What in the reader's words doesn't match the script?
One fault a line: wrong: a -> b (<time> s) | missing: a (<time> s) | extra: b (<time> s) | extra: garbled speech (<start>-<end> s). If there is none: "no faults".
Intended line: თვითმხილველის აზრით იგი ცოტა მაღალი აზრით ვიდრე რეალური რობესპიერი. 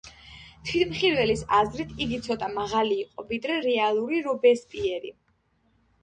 wrong: აზრით -> იყო (3.0 s)